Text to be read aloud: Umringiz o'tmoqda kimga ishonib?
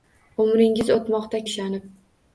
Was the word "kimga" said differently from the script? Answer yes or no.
yes